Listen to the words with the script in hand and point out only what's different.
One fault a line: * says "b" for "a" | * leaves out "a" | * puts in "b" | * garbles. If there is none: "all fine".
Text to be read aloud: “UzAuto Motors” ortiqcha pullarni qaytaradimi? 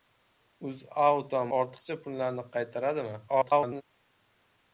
* leaves out "Motors"
* garbles